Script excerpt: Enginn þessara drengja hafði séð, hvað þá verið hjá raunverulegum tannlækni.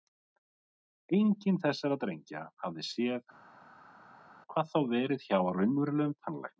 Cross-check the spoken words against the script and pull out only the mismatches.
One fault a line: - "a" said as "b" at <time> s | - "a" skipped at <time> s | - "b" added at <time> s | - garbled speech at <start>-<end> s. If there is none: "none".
none